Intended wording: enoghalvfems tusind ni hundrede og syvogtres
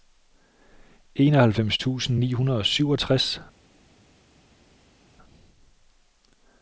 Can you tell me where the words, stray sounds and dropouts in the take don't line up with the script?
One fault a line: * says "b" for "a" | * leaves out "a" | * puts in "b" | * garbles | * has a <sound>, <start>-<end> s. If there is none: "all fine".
all fine